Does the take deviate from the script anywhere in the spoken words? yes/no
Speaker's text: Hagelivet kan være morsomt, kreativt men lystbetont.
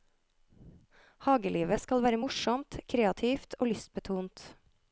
yes